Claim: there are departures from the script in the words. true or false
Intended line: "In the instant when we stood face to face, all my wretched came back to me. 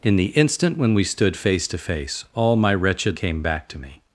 false